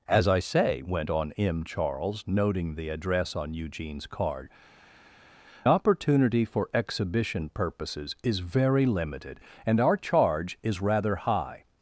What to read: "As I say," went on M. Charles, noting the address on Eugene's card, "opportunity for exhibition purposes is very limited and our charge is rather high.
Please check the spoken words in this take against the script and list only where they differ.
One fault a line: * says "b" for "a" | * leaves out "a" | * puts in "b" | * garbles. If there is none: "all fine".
all fine